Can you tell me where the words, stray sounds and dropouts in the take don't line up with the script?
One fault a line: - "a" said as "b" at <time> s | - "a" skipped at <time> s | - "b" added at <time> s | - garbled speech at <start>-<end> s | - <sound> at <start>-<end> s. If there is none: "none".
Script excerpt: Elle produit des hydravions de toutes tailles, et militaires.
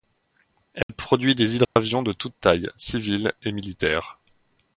- dropout at 0.8-0.9 s
- dropout at 1.6-1.8 s
- "civils" added at 2.8 s